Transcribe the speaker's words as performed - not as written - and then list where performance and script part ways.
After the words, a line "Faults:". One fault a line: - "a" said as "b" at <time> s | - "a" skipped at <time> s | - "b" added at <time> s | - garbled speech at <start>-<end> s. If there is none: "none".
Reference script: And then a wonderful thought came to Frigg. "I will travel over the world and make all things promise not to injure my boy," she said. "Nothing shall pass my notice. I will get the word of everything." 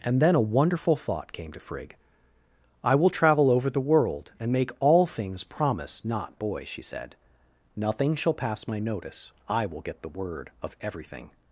And then a wonderful thought came to Frigg. "I will travel over the world and make all things promise not boy," she said. "Nothing shall pass my notice. I will get the word of everything."
Faults:
- "to injure my" skipped at 6.3 s